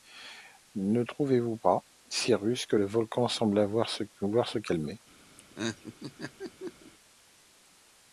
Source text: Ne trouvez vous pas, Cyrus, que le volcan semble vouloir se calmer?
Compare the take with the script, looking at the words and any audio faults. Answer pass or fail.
fail